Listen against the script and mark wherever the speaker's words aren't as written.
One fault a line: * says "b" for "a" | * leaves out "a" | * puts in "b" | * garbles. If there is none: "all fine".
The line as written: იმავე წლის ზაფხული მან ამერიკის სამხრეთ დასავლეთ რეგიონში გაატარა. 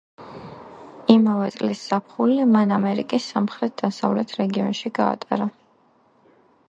all fine